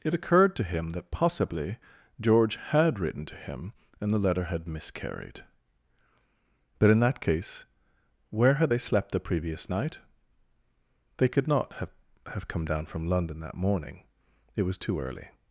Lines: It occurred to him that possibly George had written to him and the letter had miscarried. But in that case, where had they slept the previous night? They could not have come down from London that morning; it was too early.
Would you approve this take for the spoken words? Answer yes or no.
no